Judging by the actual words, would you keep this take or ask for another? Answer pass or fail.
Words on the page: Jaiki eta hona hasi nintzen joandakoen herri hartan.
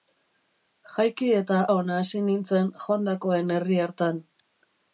pass